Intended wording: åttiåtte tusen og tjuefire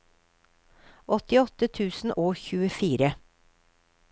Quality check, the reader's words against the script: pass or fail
pass